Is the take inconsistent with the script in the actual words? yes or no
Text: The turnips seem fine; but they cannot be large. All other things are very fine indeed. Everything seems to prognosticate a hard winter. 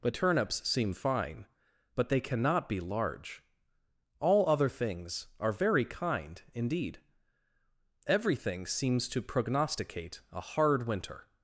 yes